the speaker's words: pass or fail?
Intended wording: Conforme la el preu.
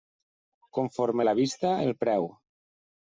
fail